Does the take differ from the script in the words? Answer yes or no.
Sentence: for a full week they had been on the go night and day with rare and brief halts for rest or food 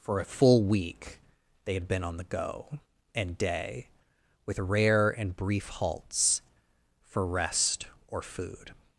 yes